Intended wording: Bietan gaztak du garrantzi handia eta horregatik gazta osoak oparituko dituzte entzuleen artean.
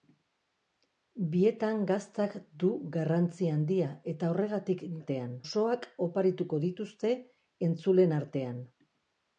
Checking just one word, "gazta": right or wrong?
wrong